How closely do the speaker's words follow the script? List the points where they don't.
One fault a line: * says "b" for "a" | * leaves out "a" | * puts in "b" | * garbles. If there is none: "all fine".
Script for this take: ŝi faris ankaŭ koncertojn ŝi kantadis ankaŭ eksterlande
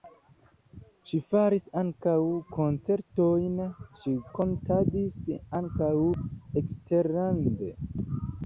all fine